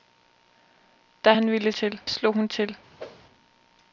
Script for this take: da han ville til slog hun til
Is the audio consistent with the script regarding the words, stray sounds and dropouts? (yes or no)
no